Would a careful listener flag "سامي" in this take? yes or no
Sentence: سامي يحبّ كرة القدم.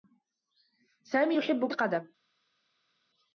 no